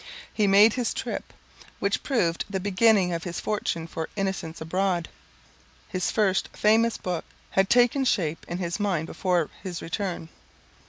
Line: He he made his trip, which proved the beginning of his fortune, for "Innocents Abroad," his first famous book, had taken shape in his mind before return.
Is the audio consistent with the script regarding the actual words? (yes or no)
no